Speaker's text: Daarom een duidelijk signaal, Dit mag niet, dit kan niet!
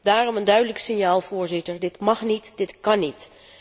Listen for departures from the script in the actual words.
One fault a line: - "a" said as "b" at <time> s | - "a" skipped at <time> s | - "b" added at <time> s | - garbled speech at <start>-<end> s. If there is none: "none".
- "Voorzitter" added at 1.2 s